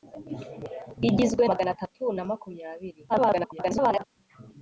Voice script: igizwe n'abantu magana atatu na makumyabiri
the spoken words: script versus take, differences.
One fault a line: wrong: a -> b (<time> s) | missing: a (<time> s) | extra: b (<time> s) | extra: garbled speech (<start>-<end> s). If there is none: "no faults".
missing: n'abantu (1.4 s)
extra: garbled speech (3.1-4.0 s)